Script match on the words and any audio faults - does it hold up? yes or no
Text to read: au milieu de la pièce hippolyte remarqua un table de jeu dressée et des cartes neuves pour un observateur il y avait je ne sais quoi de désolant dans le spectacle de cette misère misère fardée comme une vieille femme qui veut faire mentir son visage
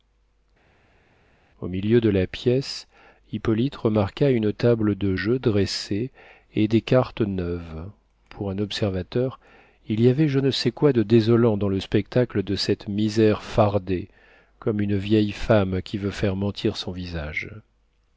no